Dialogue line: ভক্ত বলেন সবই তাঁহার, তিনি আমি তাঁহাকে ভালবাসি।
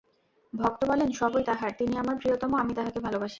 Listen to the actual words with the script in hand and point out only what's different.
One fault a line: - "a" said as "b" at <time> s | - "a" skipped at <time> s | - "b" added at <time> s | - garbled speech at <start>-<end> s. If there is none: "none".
- "আমার প্রিয়তম" added at 2.0 s